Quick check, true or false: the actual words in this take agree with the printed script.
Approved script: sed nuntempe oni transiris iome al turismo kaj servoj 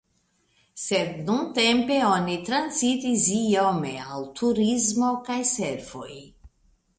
true